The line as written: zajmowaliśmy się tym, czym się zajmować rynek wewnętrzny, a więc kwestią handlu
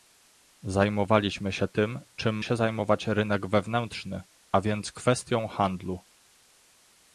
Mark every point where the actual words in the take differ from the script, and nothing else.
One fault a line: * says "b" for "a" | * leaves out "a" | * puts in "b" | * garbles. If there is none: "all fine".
all fine